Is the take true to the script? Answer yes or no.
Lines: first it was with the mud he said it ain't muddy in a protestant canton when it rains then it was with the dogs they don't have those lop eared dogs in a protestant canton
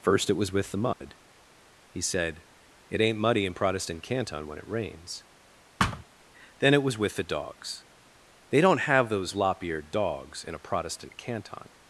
no